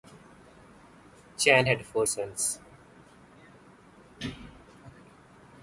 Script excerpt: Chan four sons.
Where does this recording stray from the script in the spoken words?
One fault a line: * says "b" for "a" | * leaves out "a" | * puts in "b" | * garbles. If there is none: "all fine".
* puts in "had"